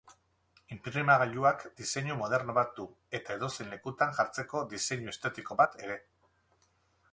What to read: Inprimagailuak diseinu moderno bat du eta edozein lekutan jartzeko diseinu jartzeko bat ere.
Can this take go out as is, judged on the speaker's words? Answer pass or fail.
fail